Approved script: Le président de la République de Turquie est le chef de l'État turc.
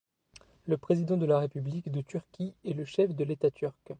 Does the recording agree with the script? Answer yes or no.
yes